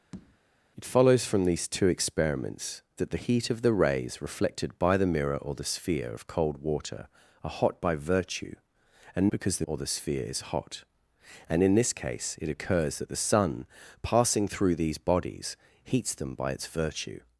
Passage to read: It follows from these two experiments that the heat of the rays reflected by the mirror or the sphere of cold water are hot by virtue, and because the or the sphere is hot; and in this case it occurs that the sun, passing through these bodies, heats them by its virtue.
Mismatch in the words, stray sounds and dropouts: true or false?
true